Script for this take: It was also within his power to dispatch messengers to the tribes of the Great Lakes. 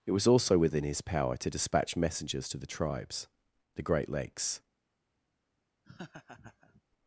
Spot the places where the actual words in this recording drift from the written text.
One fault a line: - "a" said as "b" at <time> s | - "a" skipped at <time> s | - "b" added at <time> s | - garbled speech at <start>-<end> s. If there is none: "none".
- "of" skipped at 3.3 s